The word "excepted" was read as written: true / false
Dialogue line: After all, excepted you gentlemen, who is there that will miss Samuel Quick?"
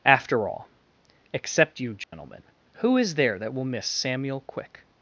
false